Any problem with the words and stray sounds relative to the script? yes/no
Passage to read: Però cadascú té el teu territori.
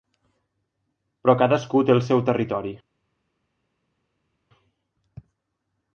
yes